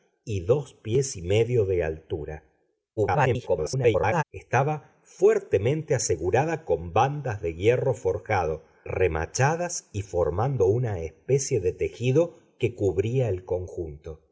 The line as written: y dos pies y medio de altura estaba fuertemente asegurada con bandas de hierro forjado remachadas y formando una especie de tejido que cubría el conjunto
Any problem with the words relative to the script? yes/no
yes